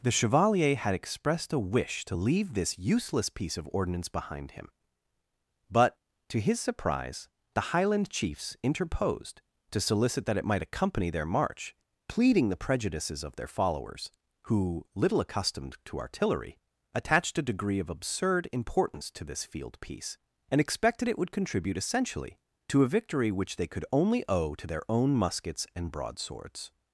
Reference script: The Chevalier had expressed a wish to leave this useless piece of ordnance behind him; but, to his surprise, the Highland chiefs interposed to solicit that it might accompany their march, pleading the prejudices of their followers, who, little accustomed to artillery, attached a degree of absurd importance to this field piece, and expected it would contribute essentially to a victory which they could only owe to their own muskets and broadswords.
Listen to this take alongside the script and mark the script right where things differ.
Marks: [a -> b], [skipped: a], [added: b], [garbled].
The Chevalier had expressed a wish to leave this useless piece of ordnance behind him; but, to his surprise, the Highland chiefs interposed to solicit that it might accompany their march, pleading the prejudices of their followers, who, little accustomed to artillery, attached a degree of absurd importance to this field piece, and expected it would contribute essentially to a victory which they could only owe to their own muskets and broadswords.